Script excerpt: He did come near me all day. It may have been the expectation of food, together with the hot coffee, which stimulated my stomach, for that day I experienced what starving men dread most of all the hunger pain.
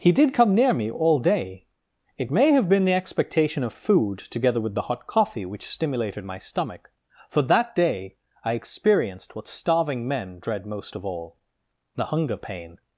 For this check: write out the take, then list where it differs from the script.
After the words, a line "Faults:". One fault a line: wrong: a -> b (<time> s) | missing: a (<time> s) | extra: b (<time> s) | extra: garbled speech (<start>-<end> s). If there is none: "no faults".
He did come near me all day. It may have been the expectation of food, together with the hot coffee, which stimulated my stomach, for that day I experienced what starving men dread most of all the hunger pain.
Faults:
no faults